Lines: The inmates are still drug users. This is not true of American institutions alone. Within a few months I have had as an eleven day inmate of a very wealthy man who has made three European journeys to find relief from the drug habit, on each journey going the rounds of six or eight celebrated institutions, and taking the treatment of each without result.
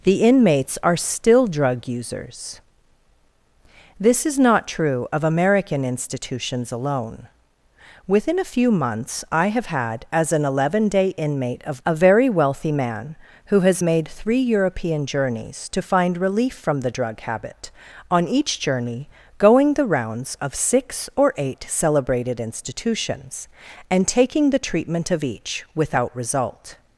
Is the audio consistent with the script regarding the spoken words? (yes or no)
yes